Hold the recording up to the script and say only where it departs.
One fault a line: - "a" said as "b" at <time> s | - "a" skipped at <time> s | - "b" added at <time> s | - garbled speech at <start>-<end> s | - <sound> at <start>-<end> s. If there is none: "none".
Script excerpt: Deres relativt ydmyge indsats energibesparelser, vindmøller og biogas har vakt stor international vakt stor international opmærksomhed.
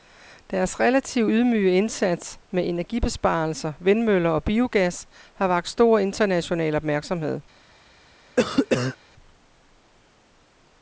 - "med" added at 2.5 s
- "vakt stor international" skipped at 6.7 s
- cough at 8.4-9.0 s